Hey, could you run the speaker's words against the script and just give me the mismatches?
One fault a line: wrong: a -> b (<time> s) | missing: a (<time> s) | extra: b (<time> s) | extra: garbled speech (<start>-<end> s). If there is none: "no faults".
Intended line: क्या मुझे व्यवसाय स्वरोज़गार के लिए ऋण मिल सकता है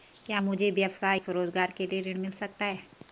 no faults